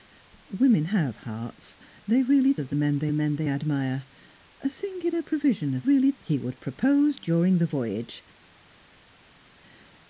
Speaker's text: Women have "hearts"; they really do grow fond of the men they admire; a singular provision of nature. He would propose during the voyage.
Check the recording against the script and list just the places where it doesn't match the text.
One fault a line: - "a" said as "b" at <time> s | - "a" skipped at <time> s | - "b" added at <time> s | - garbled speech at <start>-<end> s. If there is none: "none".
- "do grow fond" skipped at 2.5 s
- "men they" added at 3.1 s
- "nature" said as "really" at 5.8 s